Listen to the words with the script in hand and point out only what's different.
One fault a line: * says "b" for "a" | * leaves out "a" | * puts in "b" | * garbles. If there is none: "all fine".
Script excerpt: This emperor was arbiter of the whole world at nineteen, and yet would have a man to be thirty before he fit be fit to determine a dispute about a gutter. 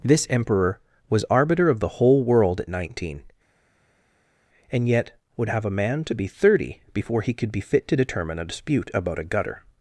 * says "could" for "fit"